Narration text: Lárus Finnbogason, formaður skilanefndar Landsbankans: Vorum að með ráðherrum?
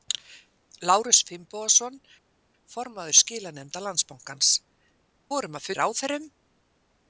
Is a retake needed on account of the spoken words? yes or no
no